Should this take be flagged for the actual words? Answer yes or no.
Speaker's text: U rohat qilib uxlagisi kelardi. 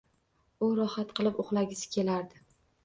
no